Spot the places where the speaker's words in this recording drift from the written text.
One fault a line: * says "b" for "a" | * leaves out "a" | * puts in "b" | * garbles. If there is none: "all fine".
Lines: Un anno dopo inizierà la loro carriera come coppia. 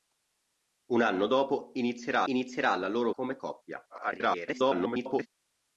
* puts in "inizierà"
* leaves out "carriera"
* garbles